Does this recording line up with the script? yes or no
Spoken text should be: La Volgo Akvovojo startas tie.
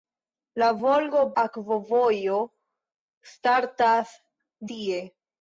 yes